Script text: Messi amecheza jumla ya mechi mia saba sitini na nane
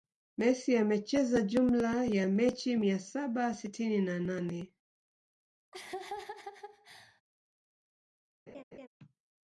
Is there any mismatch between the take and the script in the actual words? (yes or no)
no